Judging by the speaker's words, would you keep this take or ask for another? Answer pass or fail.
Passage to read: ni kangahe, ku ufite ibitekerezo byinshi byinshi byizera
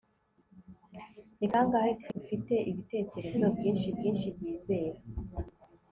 pass